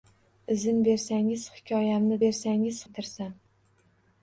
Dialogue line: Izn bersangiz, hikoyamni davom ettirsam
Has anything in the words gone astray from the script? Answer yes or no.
yes